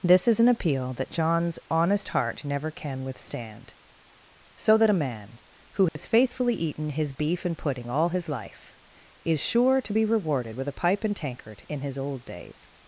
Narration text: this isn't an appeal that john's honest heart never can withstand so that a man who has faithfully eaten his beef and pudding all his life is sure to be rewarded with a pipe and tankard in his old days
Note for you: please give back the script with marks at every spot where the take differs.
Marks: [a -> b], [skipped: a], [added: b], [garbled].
this [isn't -> is] an appeal that john's honest heart never can withstand so that a man who has faithfully eaten his beef and pudding all his life is sure to be rewarded with a pipe and tankard in his old days